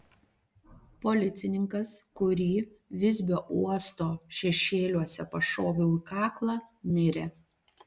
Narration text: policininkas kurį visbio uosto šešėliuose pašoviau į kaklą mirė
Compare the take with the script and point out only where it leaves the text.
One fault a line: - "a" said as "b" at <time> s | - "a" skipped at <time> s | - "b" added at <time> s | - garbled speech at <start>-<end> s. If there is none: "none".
none